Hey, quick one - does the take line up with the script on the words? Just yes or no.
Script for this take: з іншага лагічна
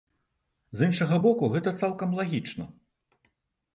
no